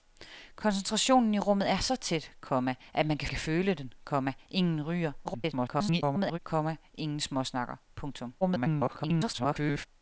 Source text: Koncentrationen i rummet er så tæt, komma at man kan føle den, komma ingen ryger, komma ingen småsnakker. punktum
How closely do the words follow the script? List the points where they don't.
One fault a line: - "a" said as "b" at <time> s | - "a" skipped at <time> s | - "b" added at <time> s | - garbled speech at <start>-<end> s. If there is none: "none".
- "kan" added at 3.3 s
- garbled speech at 5.2-6.4 s
- garbled speech at 8.4-9.9 s